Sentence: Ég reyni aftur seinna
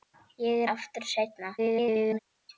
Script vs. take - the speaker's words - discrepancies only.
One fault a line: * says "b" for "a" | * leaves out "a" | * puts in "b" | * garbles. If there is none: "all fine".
* leaves out "reyni"
* garbles